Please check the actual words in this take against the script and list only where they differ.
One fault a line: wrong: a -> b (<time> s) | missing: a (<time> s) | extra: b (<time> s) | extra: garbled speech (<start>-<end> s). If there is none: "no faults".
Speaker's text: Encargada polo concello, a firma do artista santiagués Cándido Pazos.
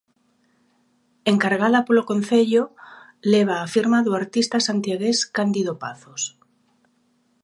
extra: leva (3.3 s)